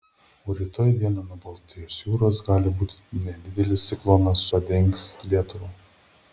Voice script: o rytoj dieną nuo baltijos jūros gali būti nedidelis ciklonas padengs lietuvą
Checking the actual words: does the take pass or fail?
pass